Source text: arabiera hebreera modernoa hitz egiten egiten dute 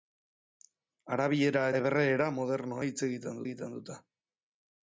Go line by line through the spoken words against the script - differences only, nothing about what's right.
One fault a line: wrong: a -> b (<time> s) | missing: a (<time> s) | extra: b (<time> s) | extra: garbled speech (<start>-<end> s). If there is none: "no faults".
no faults